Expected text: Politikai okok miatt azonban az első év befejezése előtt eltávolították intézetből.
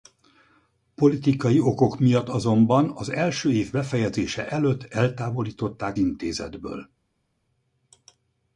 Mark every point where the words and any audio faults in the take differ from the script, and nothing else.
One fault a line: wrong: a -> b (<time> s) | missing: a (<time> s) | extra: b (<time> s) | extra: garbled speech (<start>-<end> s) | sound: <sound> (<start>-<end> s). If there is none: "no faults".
no faults